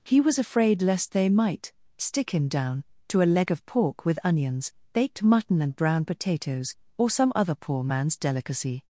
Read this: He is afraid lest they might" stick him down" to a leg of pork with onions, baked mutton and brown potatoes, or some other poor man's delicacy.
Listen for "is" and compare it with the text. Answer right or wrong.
wrong